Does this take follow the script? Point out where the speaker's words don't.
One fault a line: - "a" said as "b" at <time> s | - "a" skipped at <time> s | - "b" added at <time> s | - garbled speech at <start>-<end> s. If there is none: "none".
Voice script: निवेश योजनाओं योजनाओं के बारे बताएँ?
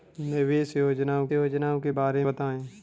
none